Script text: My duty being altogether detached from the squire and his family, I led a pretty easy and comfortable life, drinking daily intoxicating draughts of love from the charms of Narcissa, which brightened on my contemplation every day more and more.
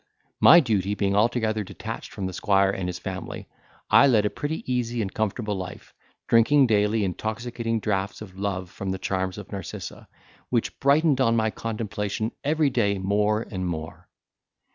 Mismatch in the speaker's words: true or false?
false